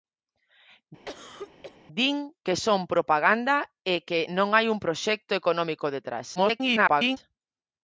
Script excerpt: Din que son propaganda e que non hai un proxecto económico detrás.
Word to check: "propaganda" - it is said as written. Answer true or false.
true